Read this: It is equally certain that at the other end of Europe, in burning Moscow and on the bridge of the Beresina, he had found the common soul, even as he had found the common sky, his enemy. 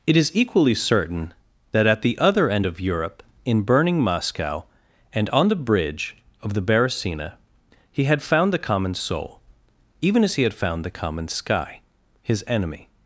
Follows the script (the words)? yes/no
yes